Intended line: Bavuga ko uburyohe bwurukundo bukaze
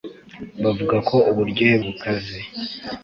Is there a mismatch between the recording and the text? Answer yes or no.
yes